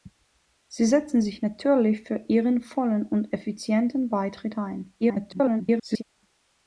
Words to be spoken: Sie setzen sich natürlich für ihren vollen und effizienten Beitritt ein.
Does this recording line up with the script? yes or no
no